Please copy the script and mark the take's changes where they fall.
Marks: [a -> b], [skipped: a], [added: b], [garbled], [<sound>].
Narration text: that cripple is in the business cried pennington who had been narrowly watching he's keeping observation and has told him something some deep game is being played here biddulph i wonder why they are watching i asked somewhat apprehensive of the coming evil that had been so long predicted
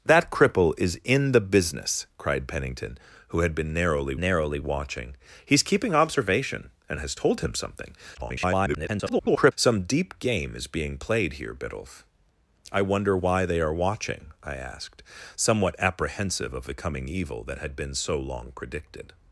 that cripple is in the business cried pennington who had been narrowly [added: narrowly] watching he's keeping observation and has told him something [garbled] some deep game is being played here biddulph i wonder why they are watching i asked somewhat apprehensive of the coming evil that had been so long predicted